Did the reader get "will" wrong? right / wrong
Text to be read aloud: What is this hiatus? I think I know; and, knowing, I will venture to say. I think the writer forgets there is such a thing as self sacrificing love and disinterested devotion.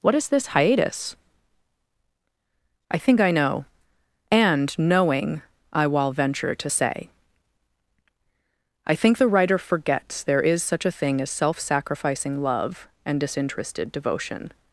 wrong